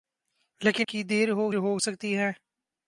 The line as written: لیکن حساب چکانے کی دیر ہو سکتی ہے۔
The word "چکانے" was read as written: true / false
false